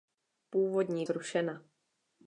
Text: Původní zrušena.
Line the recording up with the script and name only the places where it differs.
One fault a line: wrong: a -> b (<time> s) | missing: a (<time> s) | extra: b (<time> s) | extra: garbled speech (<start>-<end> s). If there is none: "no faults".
no faults